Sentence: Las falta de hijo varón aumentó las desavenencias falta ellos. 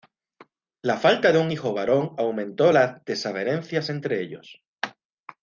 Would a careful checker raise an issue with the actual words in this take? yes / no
yes